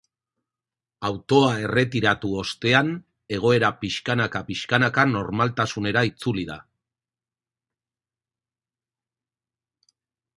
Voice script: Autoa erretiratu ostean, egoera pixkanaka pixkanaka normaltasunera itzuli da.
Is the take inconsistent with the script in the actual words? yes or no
no